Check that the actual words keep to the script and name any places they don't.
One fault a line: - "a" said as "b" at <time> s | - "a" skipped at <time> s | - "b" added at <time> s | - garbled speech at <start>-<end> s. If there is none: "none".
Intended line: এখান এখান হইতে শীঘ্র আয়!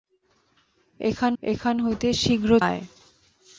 none